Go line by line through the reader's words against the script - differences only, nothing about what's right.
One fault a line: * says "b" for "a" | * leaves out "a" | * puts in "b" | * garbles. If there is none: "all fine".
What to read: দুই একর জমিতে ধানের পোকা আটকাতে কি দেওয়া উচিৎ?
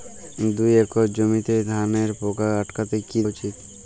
* leaves out "দেওয়া"